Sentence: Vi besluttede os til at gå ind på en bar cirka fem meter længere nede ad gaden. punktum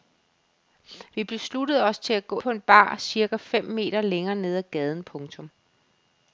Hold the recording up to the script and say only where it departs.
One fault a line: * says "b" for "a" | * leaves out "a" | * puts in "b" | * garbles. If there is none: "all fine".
* leaves out "ind"